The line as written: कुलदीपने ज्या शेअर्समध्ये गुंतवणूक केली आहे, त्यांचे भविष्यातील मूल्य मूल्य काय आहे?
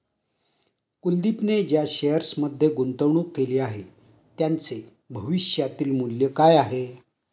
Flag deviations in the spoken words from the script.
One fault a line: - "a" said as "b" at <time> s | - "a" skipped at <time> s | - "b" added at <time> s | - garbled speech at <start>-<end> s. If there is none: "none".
- "मूल्य" skipped at 6.3 s